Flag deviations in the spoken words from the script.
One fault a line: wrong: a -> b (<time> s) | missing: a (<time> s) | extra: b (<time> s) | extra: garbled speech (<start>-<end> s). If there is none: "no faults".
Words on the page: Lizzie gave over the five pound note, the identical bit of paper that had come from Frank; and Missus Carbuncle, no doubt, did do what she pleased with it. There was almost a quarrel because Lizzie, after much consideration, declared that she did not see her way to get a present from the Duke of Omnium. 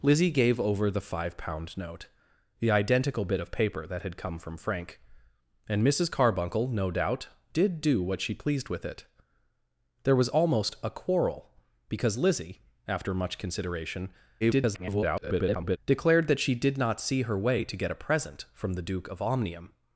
extra: garbled speech (14.4-15.8 s)